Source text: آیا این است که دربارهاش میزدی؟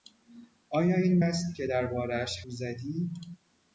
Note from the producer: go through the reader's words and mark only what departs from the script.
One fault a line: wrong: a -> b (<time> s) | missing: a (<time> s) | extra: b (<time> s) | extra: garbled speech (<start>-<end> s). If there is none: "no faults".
no faults